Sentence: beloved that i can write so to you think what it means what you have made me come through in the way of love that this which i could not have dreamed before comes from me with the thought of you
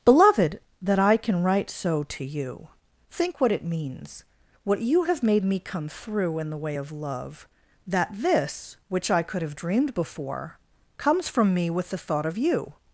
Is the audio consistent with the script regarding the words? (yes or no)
no